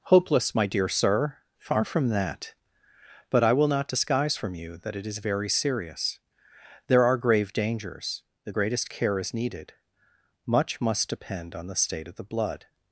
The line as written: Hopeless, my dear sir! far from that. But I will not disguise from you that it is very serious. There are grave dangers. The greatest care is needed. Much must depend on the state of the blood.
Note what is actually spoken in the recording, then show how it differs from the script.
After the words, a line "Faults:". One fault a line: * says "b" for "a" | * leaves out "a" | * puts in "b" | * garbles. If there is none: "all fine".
Hopeless, my dear sir! far from that. But I will not disguise from you that it is very serious. There are grave dangers. The greatest care is needed. Much must depend on the state of the blood.
Faults:
all fine